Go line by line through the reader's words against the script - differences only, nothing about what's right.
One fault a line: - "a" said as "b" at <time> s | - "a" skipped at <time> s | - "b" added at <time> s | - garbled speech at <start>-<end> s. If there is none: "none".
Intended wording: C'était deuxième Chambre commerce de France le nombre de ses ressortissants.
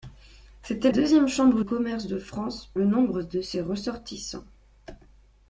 none